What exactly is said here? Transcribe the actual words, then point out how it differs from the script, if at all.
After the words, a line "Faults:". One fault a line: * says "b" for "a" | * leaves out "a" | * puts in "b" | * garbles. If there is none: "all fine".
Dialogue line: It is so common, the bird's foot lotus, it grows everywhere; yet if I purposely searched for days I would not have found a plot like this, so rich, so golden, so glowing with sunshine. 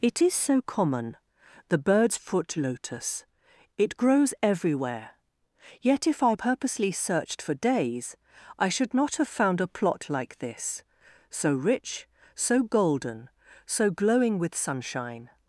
It is so common, the bird's foot lotus, it grows everywhere; yet if I purposely searched for days I should not have found a plot like this, so rich, so golden, so glowing with sunshine.
Faults:
* says "should" for "would"